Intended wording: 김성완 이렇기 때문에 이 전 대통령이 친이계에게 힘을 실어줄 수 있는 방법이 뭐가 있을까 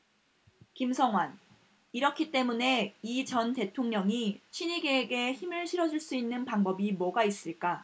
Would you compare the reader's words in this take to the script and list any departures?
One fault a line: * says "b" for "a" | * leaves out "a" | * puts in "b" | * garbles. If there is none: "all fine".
all fine